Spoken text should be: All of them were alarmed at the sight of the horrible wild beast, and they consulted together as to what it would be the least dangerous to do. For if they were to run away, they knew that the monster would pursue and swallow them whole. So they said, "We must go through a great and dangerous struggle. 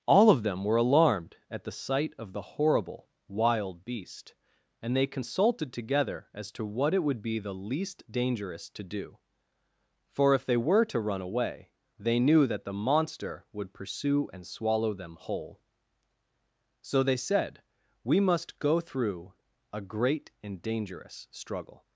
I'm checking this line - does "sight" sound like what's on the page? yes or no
yes